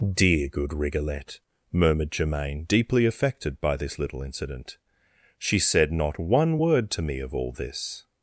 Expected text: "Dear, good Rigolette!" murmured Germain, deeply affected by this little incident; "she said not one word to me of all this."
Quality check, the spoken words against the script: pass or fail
pass